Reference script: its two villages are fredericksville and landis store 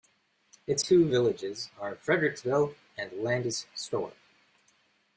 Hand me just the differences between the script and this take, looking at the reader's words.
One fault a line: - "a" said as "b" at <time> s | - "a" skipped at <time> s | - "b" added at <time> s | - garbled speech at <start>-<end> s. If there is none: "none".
none